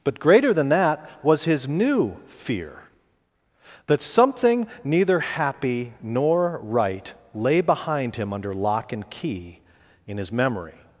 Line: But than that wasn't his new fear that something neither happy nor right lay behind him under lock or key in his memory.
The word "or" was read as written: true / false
false